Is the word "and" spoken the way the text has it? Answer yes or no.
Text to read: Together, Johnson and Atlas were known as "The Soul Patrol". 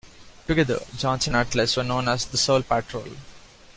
no